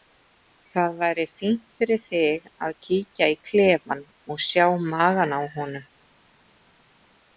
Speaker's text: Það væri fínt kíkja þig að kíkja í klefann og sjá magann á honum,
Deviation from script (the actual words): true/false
true